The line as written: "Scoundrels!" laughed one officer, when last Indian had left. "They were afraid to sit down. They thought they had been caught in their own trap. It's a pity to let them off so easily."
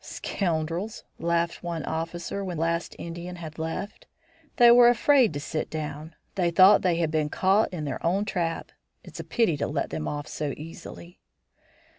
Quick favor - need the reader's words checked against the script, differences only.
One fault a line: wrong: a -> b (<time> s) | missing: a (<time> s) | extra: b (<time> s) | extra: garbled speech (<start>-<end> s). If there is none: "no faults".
no faults